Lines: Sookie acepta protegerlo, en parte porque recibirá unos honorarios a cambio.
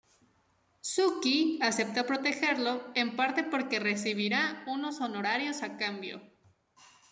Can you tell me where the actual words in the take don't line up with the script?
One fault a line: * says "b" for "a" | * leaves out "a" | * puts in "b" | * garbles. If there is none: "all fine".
all fine